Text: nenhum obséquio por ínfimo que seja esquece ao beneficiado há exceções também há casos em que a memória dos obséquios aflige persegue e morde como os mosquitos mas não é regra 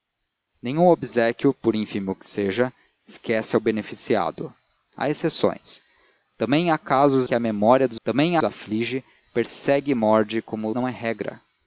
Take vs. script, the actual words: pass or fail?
fail